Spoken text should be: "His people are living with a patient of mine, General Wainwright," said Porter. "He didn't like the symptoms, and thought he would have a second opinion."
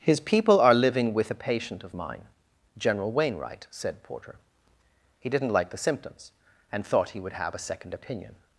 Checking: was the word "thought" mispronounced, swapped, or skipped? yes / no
no